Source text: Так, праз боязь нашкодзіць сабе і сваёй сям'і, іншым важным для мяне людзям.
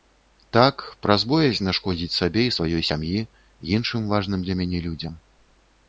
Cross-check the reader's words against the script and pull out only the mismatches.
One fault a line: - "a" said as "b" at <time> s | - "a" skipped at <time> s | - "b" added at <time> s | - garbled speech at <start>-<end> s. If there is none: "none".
none